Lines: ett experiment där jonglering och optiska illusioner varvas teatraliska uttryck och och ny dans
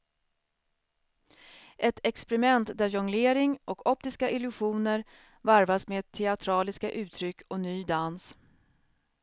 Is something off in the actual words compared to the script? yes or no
yes